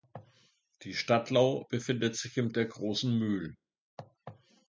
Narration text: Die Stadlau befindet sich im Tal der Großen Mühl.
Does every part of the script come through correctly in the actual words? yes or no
no